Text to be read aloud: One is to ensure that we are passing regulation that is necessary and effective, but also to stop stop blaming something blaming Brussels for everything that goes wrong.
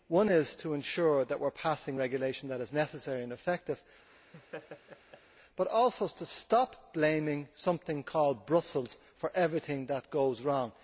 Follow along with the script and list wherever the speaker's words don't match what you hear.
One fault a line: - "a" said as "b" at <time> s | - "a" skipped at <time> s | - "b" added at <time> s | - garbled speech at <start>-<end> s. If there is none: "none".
- "stop" skipped at 6.9 s
- "blaming" said as "called" at 8.0 s